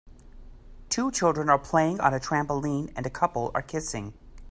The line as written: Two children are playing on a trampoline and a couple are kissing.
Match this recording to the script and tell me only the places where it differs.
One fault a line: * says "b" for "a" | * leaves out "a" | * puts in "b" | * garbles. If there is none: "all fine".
all fine